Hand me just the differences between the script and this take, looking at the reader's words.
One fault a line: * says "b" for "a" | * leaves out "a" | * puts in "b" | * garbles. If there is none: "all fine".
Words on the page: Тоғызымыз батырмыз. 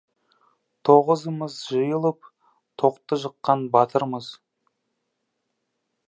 * puts in "жиылып тоқты жыққан"